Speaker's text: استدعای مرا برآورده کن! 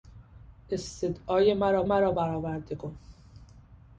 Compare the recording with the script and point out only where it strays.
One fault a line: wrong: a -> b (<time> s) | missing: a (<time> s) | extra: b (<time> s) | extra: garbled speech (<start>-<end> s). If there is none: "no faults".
extra: مرا (1.8 s)